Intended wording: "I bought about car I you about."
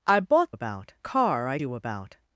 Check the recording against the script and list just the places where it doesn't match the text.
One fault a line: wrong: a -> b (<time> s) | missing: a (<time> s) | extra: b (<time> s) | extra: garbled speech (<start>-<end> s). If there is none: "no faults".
no faults